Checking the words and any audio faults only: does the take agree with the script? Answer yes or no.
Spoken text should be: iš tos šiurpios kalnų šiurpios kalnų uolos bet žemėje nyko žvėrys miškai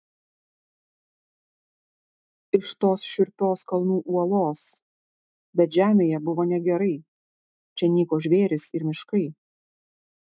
no